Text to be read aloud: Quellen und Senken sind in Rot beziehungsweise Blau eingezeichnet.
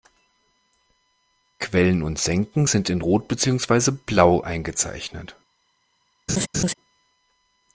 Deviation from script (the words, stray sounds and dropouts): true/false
true